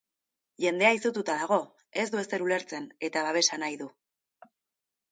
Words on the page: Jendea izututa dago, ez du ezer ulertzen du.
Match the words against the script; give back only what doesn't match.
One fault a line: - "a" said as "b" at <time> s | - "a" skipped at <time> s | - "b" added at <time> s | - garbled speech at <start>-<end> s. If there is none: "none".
- "eta babesa nahi" added at 3.1 s